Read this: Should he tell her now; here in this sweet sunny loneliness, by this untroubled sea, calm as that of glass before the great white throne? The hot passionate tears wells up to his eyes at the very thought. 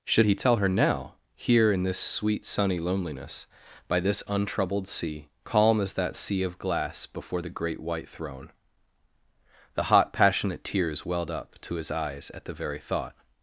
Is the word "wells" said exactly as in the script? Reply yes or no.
no